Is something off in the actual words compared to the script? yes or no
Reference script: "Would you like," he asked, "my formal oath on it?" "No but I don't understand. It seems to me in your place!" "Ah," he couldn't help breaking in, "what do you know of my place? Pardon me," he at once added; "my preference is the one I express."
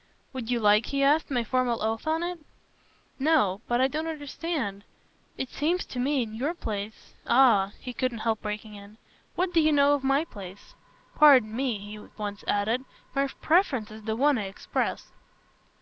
no